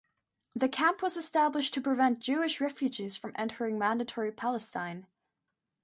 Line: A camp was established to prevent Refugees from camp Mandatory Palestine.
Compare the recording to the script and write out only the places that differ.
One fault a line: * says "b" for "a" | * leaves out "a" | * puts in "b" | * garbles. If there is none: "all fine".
* says "The" for "A"
* puts in "Jewish"
* says "entering" for "camp"